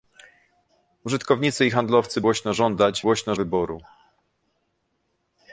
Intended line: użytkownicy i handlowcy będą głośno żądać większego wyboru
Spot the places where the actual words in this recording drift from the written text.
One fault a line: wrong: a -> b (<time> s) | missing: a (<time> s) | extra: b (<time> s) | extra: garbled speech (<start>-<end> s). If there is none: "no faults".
missing: będą (2.2 s)
wrong: większego -> głośno (3.0 s)